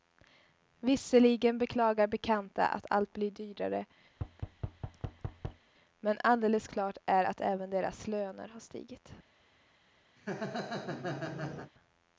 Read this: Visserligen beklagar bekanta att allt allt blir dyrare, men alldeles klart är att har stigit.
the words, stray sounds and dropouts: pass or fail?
fail